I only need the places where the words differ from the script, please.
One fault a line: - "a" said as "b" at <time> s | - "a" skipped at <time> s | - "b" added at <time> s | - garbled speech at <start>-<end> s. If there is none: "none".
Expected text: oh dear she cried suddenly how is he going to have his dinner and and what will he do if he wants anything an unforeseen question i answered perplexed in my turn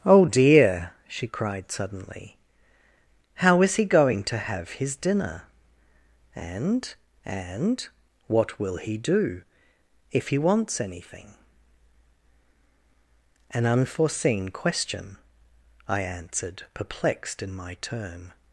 none